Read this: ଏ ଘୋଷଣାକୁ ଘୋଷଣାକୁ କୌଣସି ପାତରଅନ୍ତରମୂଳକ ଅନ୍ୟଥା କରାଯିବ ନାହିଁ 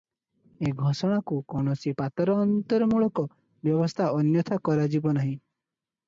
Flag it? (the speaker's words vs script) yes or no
yes